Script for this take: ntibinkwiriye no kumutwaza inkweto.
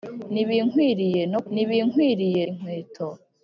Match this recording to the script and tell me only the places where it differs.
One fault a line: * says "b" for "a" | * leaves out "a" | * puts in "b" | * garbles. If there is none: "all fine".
* says "ntibinkwiriye" for "kumutwaza"